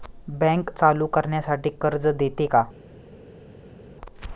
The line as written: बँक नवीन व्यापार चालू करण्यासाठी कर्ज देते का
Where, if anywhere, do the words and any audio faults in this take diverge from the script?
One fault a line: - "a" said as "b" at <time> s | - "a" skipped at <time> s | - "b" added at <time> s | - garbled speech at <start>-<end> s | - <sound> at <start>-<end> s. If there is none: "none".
- "नवीन व्यापार" skipped at 0.7 s